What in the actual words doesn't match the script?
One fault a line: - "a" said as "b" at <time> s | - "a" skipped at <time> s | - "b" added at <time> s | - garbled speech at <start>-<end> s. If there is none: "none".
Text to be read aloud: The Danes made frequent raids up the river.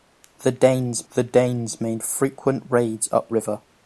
- "the Danes" added at 1.1 s
- "the" skipped at 3.3 s